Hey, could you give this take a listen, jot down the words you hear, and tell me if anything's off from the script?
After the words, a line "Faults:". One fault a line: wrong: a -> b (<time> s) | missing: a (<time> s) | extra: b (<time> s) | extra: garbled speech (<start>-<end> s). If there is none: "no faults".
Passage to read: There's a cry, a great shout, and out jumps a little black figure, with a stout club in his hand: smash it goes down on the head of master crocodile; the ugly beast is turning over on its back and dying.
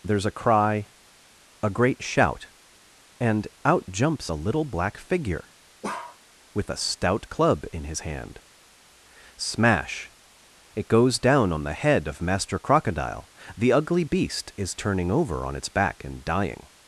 There's a cry, a great shout, and out jumps a little black figure, with a stout club in his hand: smash it goes down on the head of master crocodile; the ugly beast is turning over on its back and dying.
Faults:
no faults